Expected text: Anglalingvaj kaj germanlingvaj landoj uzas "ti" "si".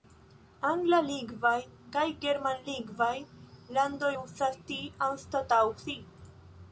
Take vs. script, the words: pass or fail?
fail